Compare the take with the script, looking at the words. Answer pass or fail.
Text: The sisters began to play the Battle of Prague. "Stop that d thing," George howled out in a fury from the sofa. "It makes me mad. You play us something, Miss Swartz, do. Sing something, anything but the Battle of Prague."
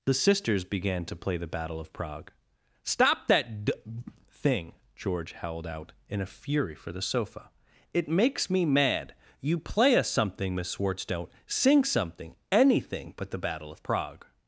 fail